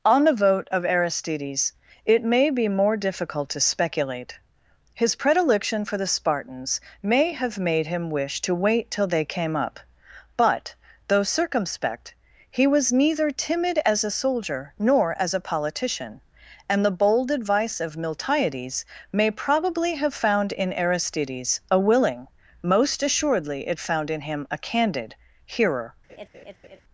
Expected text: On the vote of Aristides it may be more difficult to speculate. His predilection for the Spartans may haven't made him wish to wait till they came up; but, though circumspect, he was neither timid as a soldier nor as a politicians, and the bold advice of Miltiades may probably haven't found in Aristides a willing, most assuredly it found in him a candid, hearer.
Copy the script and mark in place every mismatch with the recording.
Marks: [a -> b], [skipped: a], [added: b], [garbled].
On the vote of Aristides it may be more difficult to speculate. His predilection for the Spartans may [haven't -> have] made him wish to wait till they came up; but, though circumspect, he was neither timid as a soldier nor as a [politicians, -> politician] and the bold advice of Miltiades may probably [haven't -> have] found in Aristides a willing, most assuredly it found in him a candid, hearer.